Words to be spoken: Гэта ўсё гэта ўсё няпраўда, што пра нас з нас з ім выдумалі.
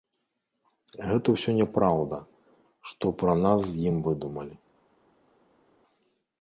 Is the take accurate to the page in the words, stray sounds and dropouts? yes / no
no